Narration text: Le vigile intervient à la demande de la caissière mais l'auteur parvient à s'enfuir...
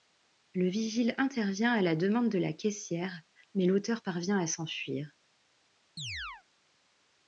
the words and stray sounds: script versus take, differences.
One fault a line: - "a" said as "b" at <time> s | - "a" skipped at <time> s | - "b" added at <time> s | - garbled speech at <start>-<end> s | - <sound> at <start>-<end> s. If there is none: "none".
- chirp at 6.0-6.4 s